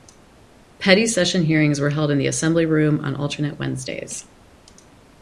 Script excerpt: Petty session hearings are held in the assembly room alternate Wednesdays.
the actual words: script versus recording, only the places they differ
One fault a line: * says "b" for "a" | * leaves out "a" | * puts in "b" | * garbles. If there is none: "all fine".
* says "were" for "are"
* puts in "on"